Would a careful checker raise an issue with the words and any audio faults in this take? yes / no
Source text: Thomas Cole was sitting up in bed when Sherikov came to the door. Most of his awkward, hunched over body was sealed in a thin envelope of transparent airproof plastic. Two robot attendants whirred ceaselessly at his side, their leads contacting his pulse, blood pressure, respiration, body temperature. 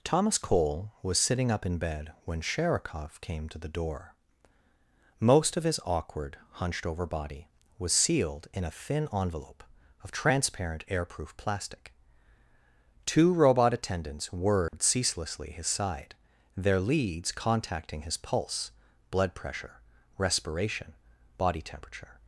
yes